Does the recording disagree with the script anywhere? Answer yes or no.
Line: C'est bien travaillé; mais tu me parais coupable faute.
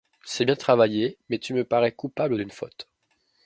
yes